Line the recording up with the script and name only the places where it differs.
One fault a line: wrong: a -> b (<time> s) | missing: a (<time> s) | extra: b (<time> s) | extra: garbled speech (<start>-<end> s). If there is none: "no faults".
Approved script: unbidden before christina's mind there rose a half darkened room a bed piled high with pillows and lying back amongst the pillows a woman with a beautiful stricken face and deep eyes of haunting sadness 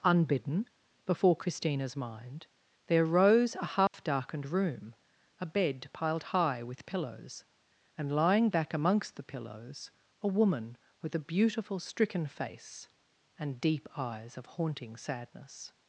no faults